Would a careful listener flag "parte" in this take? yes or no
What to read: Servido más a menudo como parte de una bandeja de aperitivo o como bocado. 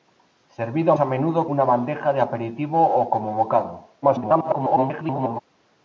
yes